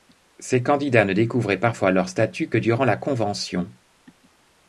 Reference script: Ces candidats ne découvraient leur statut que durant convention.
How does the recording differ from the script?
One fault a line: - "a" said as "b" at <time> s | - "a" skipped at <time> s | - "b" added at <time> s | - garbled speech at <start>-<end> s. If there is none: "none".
- "parfois" added at 1.6 s
- "la" added at 2.9 s